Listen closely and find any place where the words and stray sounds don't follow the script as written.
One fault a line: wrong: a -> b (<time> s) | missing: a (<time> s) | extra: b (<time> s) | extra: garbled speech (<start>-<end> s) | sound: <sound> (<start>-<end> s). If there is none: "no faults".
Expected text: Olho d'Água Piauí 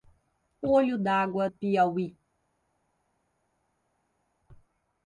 no faults